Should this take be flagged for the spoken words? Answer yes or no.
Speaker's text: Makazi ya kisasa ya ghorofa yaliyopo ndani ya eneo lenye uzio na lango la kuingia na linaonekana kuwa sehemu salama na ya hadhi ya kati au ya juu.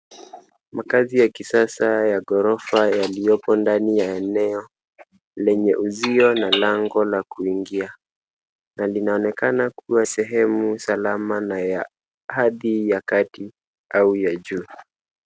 no